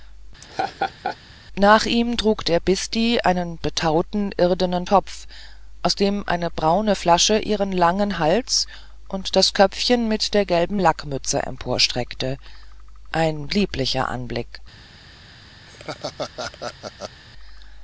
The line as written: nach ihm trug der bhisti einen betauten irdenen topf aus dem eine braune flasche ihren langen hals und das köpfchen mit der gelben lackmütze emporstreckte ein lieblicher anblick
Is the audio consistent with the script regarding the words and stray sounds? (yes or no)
no